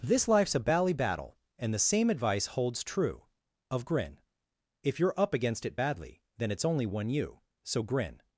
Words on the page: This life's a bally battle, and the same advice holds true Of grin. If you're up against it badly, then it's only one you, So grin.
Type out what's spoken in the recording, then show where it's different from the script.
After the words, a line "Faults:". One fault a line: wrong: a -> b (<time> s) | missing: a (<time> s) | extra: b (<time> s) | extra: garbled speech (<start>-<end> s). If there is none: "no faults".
This life's a bally battle, and the same advice holds true Of grin. If you're up against it badly, then it's only one you, So grin.
Faults:
no faults